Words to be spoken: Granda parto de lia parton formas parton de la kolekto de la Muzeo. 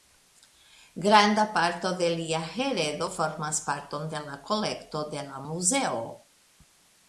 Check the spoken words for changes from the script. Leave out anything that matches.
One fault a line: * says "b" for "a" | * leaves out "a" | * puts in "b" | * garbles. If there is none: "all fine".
* says "heredo" for "parton"